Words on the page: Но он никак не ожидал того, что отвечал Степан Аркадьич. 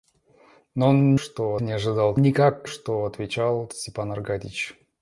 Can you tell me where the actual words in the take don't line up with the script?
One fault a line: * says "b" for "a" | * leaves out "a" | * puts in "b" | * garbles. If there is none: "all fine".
* says "что" for "никак"
* says "никак" for "того"